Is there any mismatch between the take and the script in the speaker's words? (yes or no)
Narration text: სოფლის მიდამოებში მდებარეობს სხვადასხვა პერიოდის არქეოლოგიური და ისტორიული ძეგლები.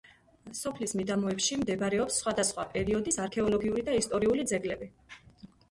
no